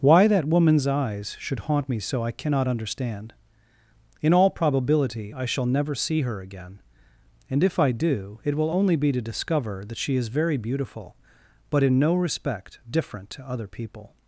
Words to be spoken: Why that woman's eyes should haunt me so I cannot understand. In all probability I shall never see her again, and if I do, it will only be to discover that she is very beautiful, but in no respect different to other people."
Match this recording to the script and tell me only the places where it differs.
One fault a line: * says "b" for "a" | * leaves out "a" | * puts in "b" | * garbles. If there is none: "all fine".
all fine